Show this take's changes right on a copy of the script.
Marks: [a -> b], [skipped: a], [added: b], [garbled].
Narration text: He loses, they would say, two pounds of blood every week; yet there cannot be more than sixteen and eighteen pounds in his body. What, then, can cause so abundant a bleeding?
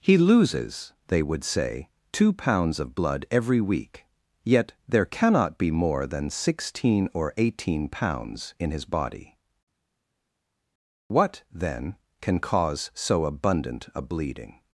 He loses, they would say, two pounds of blood every week; yet there cannot be more than sixteen [and -> or] eighteen pounds in his body. What, then, can cause so abundant a bleeding?